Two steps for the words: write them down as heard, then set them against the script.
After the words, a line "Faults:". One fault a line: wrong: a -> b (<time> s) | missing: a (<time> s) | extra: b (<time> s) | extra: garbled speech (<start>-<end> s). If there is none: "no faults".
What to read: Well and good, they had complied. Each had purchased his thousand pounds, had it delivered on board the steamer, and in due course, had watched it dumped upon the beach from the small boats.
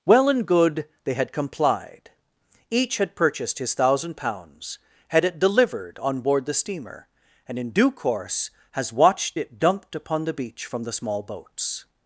Well and good, they had complied. Each had purchased his thousand pounds, had it delivered on board the steamer, and in due course, has watched it dumped upon the beach from the small boats.
Faults:
wrong: had -> has (8.7 s)